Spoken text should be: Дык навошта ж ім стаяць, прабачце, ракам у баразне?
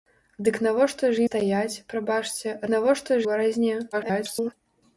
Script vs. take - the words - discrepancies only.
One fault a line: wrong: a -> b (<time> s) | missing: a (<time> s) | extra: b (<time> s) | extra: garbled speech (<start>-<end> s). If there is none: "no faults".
missing: ім (1.3 s)
wrong: ракам -> навошта (2.7 s)
extra: garbled speech (3.9-4.5 s)